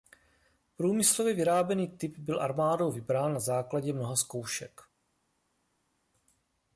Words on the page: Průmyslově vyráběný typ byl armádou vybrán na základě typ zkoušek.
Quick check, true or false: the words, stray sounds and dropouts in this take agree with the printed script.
false